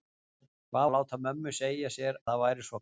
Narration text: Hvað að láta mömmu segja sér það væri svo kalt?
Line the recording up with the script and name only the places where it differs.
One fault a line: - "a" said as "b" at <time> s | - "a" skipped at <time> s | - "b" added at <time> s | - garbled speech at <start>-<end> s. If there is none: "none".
none